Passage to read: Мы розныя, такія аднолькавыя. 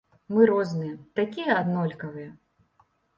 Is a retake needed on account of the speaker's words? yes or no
no